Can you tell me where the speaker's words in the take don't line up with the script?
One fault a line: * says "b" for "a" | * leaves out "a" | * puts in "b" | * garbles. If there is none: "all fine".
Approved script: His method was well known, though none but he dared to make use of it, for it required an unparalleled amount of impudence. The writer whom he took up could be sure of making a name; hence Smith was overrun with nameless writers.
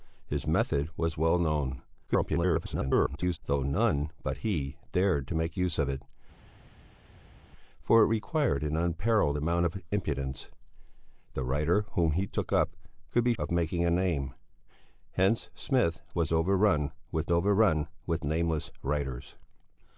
* garbles
* leaves out "sure"
* puts in "overrun with"